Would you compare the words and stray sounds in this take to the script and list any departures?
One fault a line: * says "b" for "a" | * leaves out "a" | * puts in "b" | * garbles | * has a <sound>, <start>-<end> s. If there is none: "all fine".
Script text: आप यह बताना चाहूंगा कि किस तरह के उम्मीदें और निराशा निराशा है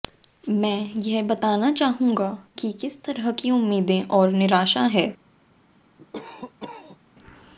* says "मैं" for "आप"
* says "की" for "के"
* leaves out "निराशा"
* has a cough, 6.0-7.0 s